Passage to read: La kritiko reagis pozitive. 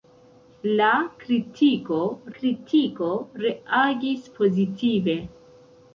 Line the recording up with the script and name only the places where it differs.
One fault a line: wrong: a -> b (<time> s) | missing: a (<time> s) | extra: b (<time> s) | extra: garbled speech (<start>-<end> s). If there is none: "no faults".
extra: kritiko (2.4 s)